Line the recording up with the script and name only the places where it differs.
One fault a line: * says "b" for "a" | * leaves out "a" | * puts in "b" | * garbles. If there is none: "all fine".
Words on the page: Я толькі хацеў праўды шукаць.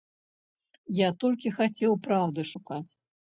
all fine